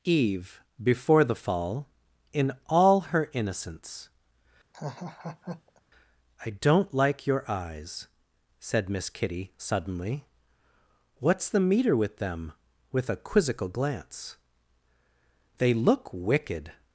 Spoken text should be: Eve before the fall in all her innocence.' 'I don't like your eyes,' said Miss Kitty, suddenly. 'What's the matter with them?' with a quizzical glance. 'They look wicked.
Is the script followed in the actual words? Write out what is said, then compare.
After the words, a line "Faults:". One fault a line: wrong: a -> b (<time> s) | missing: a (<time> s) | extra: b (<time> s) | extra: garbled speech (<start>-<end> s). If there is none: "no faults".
Eve before the fall in all her innocence.' 'I don't like your eyes,' said Miss Kitty, suddenly. 'What's the meter with them?' with a quizzical glance. 'They look wicked.
Faults:
wrong: matter -> meter (11.6 s)